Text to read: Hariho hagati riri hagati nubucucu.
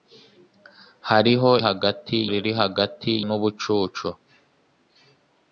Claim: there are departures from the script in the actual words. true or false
false